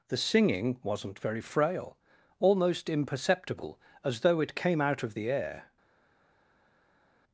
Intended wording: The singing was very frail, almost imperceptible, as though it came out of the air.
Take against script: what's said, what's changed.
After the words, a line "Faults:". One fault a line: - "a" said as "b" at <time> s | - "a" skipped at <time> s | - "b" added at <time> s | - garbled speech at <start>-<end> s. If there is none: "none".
The singing wasn't very frail, almost imperceptible, as though it came out of the air.
Faults:
- "was" said as "wasn't" at 0.8 s